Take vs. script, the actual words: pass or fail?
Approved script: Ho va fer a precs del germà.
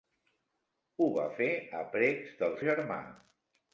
pass